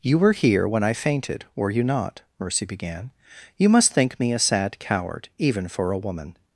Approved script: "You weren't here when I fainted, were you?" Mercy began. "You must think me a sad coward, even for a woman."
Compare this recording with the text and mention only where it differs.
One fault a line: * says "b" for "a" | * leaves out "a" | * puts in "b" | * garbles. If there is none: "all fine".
* says "were" for "weren't"
* puts in "not"